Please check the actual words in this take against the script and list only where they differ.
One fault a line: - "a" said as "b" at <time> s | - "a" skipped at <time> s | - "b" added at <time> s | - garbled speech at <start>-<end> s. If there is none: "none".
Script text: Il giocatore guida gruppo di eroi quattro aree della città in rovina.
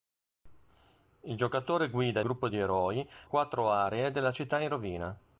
none